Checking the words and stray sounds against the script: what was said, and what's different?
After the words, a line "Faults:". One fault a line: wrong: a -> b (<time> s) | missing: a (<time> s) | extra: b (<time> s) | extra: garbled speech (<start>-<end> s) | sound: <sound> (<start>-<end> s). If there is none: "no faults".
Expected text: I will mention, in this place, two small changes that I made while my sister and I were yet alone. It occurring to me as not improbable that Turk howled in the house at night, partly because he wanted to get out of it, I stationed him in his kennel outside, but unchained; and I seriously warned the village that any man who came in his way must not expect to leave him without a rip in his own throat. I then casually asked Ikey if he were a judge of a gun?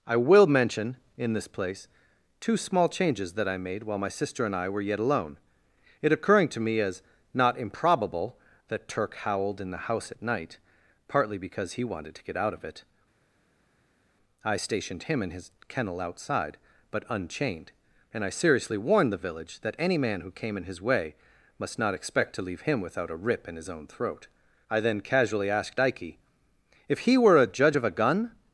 I will mention, in this place, two small changes that I made while my sister and I were yet alone. It occurring to me as not improbable that Turk howled in the house at night, partly because he wanted to get out of it, I stationed him in his kennel outside, but unchained; and I seriously warned the village that any man who came in his way must not expect to leave him without a rip in his own throat. I then casually asked Ikey if he were a judge of a gun?
Faults:
no faults